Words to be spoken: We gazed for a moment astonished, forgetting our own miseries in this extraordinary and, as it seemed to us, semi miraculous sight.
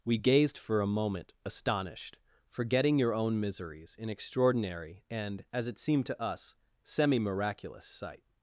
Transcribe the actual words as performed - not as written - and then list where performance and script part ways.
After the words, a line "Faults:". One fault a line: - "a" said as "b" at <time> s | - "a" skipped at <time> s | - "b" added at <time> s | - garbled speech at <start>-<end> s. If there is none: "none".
We gazed for a moment astonished, forgetting your own miseries in extraordinary and, as it seemed to us, semi miraculous sight.
Faults:
- "our" said as "your" at 3.0 s
- "this" skipped at 4.1 s